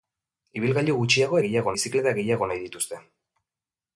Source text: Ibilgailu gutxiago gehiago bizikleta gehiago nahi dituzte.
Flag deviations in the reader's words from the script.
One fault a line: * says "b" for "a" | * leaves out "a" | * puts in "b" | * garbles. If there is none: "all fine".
all fine